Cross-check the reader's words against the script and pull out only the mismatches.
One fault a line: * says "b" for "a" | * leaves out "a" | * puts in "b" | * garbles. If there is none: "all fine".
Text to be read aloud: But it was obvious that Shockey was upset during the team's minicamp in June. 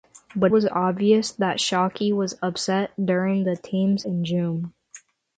* leaves out "it"
* leaves out "minicamp"